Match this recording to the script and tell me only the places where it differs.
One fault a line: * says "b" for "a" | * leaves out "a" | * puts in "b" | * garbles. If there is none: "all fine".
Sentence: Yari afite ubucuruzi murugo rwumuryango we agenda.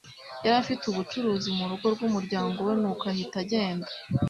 * puts in "nuko ahita"